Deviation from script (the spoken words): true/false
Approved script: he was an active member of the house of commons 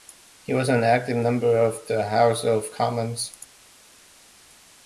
false